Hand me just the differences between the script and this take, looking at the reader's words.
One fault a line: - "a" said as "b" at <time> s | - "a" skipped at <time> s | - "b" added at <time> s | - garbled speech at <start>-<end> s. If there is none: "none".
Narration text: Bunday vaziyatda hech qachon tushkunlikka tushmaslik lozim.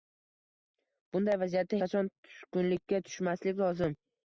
- "hech" skipped at 1.8 s